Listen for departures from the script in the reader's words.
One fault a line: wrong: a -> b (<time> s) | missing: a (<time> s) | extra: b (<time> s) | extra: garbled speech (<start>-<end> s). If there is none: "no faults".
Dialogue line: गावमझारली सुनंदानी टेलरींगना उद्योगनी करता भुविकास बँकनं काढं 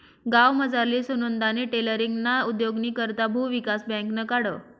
no faults